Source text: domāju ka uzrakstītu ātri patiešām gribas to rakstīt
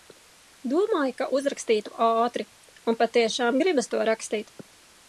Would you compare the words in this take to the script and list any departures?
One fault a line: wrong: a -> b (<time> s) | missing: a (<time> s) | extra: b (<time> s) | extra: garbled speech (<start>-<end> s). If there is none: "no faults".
extra: un (2.9 s)